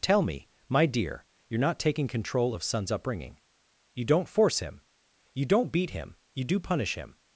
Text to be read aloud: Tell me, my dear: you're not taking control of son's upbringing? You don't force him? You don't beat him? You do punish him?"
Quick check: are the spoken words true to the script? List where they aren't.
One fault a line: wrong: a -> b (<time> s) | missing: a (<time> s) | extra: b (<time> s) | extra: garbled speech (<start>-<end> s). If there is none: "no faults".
no faults